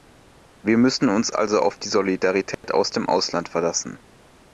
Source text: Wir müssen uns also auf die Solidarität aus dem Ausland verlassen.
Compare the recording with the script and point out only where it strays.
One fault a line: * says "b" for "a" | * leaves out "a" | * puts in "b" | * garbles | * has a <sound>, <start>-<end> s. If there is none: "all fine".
* has a dropout, 2.5-2.6 s